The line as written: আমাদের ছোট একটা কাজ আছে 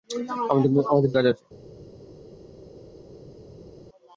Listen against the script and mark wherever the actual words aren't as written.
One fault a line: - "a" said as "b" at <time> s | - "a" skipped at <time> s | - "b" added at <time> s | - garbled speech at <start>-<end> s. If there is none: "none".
- "ছোট একটা" skipped at 1.1 s